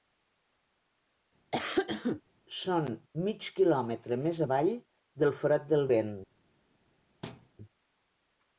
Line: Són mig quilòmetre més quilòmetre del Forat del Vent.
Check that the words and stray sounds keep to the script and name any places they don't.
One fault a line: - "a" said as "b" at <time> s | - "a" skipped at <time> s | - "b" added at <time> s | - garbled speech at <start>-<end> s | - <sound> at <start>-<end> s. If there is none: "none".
- cough at 1.5-2.2 s
- "quilòmetre" said as "avall" at 4.5 s
- thud at 7.2-7.5 s